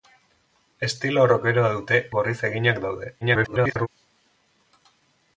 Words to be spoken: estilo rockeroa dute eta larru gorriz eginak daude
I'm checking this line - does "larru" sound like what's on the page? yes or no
no